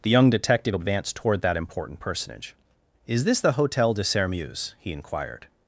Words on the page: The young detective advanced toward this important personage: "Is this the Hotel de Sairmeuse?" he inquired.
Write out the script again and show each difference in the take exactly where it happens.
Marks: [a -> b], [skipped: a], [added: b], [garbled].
The young detective advanced toward [this -> that] important personage: "Is this the Hotel de Sairmeuse?" he inquired.